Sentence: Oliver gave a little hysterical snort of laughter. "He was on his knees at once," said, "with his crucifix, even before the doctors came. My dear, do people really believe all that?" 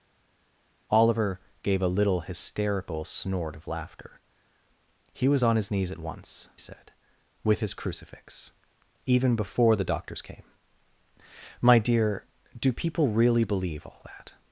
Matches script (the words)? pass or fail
pass